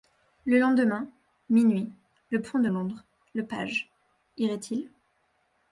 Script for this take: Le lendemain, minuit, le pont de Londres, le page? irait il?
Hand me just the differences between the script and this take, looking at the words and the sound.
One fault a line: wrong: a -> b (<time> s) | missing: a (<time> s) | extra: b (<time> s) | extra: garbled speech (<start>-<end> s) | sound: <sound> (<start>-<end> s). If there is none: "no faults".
no faults